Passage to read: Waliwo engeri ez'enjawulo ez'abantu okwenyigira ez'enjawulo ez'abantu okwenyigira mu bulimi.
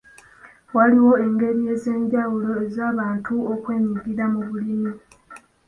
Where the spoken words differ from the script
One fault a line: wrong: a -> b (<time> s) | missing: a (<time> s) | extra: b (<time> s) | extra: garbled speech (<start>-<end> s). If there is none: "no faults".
missing: ez'enjawulo ez'abantu okwenyigira (4.2 s)